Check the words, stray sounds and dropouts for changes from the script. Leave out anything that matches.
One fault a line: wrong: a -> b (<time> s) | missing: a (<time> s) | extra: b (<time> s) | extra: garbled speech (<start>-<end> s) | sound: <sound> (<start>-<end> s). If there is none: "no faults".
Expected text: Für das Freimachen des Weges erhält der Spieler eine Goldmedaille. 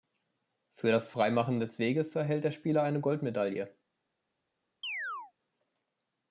sound: chirp (4.8-5.3 s)